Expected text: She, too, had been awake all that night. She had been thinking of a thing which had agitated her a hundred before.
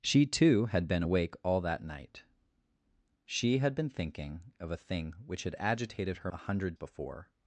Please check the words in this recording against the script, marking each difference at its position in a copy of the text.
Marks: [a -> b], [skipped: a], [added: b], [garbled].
She, too, had been awake all that night. She had been thinking of a thing which had agitated her a hundred before.